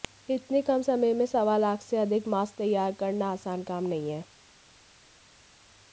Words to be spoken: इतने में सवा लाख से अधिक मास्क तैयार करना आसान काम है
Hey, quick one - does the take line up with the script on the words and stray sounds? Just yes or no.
no